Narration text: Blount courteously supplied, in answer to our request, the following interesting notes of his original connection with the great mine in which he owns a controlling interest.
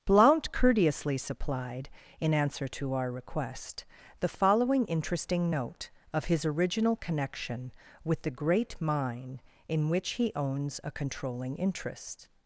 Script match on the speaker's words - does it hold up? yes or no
no